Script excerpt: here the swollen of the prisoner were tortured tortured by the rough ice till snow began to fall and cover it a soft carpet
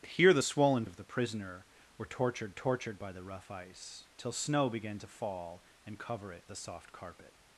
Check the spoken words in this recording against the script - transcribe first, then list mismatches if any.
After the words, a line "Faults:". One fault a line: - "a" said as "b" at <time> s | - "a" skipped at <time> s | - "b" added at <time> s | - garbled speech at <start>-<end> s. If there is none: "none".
here the swollen of the prisoner were tortured tortured by the rough ice till snow began to fall and cover it a soft carpet
Faults:
none